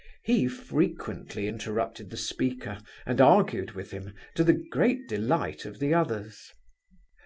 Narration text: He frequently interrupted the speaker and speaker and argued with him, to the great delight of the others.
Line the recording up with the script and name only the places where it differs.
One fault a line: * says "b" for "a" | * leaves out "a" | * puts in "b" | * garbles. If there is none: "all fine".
* leaves out "speaker and"